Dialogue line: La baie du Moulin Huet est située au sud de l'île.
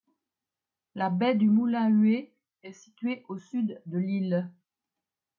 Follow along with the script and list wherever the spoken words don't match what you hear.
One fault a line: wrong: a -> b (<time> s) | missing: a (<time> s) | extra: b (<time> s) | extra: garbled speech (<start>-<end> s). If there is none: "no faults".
no faults